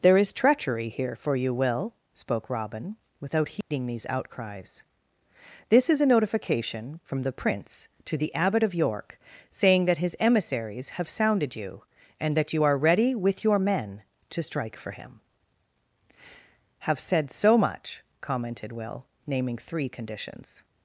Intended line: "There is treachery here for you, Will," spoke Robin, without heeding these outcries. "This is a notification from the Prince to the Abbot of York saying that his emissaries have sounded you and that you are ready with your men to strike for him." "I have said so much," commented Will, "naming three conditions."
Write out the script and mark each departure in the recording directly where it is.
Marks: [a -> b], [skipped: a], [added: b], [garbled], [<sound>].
"There is treachery here for you, Will," spoke Robin, without heeding [dropout] these outcries. "This is a notification from the Prince to the Abbot of York saying that his emissaries have sounded you and that you are ready with your men to strike for him." [skipped: "I] have said so much," commented Will, "naming three conditions."